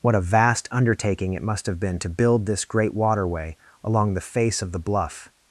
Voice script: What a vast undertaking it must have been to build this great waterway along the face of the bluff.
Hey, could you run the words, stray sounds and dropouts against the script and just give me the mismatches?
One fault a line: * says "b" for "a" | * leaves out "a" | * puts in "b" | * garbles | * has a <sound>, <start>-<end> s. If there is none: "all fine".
all fine